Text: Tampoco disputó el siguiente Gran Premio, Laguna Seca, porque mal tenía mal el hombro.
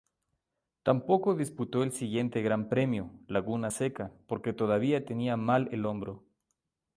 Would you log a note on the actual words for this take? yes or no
yes